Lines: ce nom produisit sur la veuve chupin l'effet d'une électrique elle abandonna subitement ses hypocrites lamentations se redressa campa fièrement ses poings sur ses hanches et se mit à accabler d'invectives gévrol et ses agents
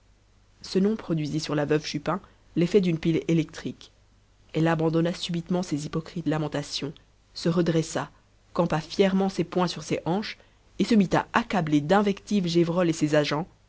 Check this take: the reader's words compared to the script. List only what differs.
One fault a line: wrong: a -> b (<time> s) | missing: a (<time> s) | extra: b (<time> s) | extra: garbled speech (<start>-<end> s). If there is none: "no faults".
extra: pile (3.0 s)